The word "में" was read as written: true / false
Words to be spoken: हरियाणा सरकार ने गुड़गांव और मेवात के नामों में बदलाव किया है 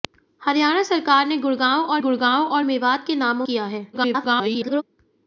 false